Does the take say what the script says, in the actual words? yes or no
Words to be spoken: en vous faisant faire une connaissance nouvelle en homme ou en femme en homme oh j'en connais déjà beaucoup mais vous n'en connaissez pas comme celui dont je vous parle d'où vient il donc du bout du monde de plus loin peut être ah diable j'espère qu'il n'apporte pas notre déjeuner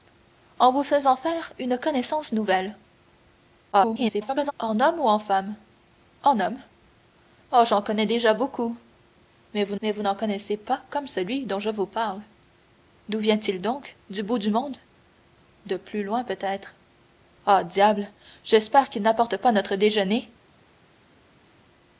no